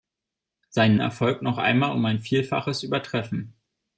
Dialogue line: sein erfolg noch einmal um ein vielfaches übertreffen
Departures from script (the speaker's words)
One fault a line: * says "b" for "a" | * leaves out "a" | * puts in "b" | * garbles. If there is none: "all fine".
all fine